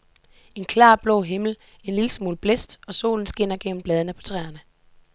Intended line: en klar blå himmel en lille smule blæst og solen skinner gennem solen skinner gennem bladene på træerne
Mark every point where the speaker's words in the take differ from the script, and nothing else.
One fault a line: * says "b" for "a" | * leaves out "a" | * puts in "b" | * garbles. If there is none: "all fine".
* leaves out "solen skinner gennem"